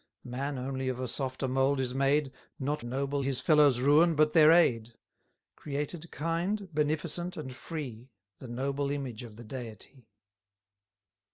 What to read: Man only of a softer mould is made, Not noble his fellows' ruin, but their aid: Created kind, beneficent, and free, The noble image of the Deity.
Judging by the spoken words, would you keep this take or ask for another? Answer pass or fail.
pass